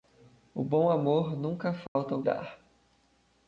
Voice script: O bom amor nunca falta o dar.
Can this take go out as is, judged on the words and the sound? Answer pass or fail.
fail